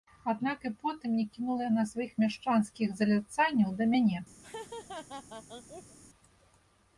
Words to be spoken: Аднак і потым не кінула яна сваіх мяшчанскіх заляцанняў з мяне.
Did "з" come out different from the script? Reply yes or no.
yes